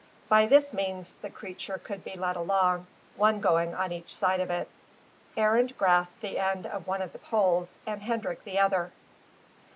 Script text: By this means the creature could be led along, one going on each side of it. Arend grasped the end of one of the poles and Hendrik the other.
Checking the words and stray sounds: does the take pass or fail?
pass